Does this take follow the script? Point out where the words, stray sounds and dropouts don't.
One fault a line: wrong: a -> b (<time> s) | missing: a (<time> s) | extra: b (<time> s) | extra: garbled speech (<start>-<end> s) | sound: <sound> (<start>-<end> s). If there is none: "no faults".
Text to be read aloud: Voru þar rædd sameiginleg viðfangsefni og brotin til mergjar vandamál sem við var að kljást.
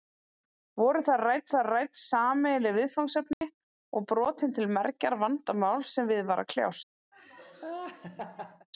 extra: þar rædd (1.5 s)
sound: dropout (3.3-3.4 s)
sound: laugh (7.1-8.7 s)